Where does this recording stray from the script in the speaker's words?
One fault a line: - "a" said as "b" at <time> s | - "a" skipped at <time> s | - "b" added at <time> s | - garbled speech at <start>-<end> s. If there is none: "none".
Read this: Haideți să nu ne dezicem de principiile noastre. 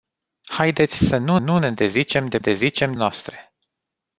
- "nu" added at 1.4 s
- "principiile" said as "dezicem" at 2.4 s